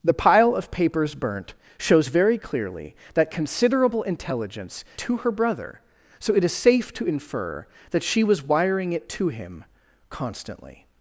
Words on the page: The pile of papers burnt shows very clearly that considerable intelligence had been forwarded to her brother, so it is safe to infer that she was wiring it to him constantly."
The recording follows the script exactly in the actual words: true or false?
false